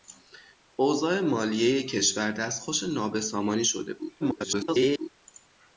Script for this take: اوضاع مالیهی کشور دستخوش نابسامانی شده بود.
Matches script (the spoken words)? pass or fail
fail